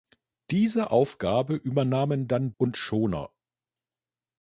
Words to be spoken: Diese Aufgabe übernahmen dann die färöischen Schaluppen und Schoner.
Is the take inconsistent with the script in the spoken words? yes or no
yes